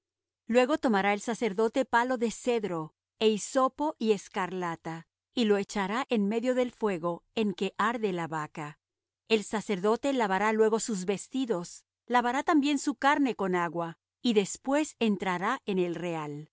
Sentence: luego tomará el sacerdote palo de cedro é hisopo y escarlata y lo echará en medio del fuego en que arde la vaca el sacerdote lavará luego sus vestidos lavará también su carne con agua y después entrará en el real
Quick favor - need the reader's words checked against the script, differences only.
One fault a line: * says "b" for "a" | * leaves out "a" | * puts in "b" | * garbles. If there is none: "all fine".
all fine